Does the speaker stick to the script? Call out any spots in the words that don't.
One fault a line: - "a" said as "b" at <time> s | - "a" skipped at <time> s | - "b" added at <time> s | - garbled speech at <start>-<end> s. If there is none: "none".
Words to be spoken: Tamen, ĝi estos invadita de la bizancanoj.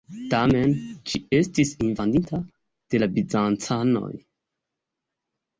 - "estos" said as "estis" at 1.4 s